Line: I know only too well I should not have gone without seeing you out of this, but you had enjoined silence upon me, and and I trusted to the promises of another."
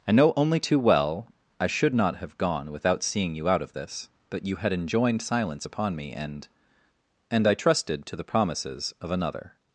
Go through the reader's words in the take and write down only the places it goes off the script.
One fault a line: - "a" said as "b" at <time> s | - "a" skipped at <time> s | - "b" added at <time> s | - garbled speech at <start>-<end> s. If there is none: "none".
none